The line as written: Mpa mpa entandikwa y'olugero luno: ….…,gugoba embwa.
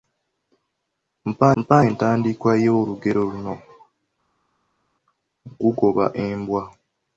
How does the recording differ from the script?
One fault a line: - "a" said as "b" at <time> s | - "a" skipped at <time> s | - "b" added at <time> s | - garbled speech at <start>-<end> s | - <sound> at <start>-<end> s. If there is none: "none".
none